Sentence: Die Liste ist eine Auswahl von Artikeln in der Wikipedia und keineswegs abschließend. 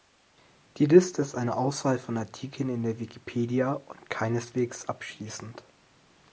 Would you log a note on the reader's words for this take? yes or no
no